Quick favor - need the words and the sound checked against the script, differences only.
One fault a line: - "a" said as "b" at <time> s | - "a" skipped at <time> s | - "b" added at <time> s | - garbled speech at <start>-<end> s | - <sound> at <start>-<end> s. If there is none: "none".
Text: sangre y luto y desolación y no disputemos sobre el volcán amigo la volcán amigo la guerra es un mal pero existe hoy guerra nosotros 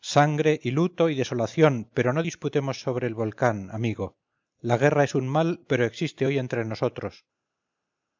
- "y" said as "pero" at 1.9 s
- "volcán amigo la" skipped at 4.8 s
- "guerra" said as "entre" at 6.4 s